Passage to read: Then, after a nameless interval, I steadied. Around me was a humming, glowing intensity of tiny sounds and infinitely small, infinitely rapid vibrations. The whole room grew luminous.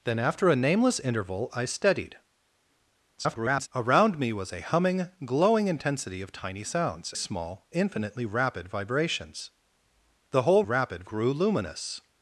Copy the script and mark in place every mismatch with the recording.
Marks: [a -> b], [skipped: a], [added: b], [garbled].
Then, after a nameless interval, I steadied. [garbled] Around me was a humming, glowing intensity of tiny sounds [skipped: and infinitely] small, infinitely rapid vibrations. The whole [room -> rapid] grew luminous.